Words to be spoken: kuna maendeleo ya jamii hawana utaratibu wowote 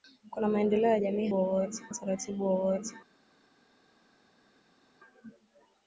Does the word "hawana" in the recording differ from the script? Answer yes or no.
yes